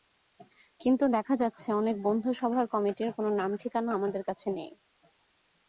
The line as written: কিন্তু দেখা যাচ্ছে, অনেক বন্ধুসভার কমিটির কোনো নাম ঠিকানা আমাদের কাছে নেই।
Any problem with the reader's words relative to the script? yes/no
no